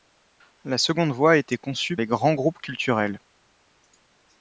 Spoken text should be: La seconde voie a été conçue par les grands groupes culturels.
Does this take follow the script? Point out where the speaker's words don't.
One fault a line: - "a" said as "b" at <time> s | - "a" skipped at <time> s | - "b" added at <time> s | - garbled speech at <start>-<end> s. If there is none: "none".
- "par" skipped at 1.9 s